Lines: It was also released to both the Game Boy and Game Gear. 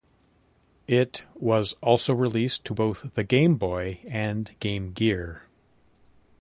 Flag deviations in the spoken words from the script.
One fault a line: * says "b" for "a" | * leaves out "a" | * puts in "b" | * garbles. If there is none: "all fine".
all fine